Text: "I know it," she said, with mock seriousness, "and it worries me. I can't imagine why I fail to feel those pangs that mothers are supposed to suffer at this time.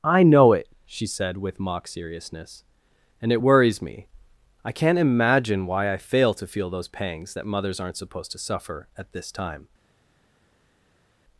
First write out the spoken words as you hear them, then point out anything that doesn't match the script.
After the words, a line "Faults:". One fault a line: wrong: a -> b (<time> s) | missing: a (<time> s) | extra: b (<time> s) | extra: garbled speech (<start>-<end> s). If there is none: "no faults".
"I know it," she said, with mock seriousness, "and it worries me. I can't imagine why I fail to feel those pangs that mothers aren't supposed to suffer at this time.
Faults:
wrong: are -> aren't (7.8 s)